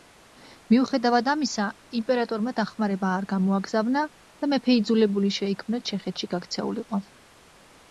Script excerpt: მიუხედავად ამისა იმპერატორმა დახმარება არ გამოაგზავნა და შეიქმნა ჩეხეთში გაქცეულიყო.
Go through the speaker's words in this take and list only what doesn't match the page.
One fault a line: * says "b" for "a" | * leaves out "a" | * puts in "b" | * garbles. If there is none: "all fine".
* puts in "მეფე იძულებული"